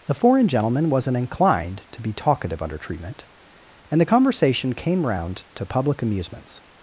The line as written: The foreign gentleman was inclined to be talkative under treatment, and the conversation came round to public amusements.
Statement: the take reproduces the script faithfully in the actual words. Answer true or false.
false